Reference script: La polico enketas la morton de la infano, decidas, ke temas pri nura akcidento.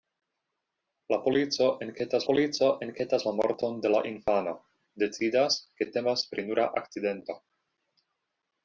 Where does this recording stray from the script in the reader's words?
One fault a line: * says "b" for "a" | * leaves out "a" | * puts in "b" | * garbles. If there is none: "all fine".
* puts in "polico enketas"